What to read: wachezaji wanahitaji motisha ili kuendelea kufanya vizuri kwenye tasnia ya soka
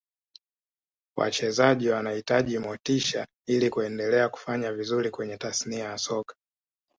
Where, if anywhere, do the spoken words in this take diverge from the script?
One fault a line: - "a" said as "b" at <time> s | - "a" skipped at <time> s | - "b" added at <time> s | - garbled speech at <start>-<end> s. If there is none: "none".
none